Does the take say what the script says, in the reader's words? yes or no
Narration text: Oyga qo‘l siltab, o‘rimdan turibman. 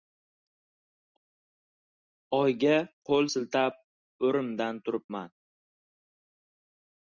yes